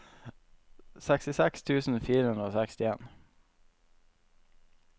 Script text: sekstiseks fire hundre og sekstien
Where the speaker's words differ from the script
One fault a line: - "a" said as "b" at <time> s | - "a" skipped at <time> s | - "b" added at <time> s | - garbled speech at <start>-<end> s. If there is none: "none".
- "tusen" added at 1.7 s